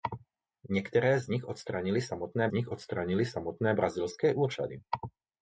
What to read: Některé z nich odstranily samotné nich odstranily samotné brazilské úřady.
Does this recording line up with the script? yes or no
yes